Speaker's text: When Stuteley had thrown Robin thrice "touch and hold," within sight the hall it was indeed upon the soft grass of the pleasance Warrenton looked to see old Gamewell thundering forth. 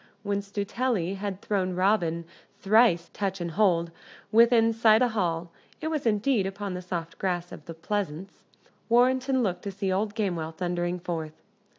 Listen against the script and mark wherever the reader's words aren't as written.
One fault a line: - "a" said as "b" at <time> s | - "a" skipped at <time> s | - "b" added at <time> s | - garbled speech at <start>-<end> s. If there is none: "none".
none